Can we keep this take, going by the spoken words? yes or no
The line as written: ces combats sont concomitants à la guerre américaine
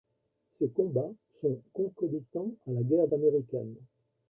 yes